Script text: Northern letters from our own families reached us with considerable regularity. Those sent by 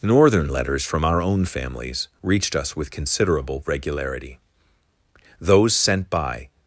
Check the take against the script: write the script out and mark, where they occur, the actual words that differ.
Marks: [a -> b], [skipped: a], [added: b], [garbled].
Northern letters from our own families reached us with considerable regularity. Those sent by